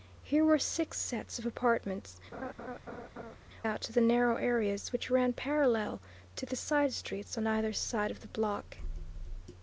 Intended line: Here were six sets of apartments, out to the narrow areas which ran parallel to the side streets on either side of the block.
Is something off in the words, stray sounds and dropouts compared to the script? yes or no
yes